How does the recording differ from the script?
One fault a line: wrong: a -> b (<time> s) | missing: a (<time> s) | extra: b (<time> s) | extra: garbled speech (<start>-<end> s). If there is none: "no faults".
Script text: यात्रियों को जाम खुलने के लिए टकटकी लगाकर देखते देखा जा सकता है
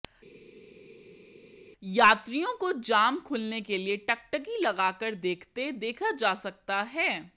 no faults